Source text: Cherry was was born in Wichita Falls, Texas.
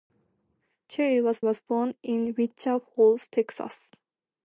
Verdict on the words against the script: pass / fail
pass